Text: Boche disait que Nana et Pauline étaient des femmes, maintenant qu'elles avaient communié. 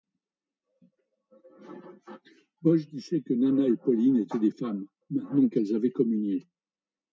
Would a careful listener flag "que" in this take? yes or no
no